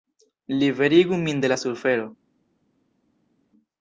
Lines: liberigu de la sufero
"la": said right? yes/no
yes